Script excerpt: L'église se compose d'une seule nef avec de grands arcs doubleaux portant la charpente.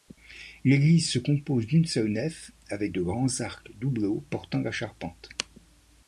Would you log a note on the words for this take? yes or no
no